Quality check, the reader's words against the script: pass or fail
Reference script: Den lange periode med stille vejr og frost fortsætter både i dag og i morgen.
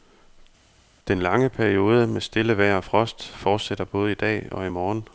pass